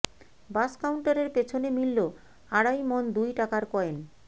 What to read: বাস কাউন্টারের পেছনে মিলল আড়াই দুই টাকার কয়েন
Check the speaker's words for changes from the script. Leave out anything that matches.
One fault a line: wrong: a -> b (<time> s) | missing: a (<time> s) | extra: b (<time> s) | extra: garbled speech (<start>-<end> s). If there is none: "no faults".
extra: মণ (2.9 s)